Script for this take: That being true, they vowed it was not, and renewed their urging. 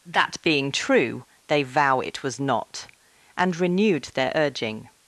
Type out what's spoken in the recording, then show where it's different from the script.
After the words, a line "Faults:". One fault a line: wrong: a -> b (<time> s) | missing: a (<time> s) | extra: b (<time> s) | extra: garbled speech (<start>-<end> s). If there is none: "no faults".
That being true, they vow it was not, and renewed their urging.
Faults:
wrong: vowed -> vow (1.6 s)